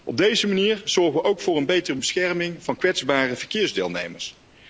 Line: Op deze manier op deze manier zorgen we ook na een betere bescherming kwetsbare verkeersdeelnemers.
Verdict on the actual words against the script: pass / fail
fail